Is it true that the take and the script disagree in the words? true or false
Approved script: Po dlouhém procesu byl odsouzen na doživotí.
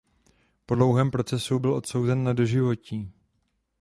false